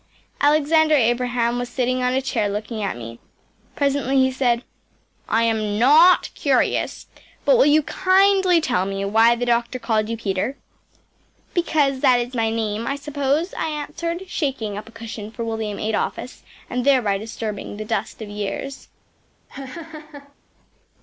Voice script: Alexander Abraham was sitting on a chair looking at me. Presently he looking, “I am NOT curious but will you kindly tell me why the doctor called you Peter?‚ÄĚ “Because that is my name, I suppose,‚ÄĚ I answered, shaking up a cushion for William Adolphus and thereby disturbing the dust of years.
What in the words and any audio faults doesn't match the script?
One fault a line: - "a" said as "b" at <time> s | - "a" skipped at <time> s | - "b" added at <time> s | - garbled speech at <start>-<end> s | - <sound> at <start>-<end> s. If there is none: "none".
- "looking" said as "said" at 4.3 s
- laugh at 19.5-20.3 s